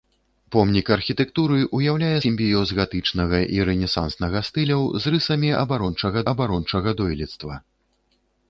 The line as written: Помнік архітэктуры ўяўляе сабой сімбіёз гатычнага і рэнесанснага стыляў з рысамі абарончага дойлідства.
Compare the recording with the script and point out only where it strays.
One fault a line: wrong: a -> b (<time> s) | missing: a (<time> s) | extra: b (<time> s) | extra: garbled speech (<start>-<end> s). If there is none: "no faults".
missing: сабой (2.2 s)
extra: абарончага (6.3 s)